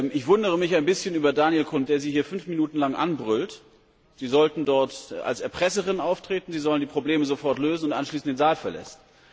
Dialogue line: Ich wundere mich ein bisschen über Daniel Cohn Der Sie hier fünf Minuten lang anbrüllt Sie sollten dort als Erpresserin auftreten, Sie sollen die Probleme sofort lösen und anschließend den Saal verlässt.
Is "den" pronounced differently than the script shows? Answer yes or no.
no